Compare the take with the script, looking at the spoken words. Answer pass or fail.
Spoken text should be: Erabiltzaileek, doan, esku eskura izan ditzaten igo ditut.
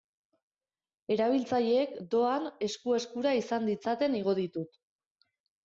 pass